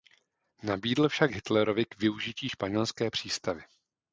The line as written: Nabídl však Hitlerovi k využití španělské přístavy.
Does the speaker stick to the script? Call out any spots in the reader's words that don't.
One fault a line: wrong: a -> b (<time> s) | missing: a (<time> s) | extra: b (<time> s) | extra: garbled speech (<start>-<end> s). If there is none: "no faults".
no faults